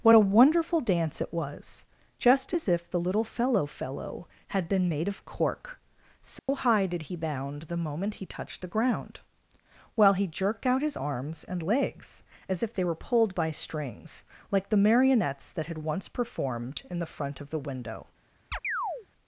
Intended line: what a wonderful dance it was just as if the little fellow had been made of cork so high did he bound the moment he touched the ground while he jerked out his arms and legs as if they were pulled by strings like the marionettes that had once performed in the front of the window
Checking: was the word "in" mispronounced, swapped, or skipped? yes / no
no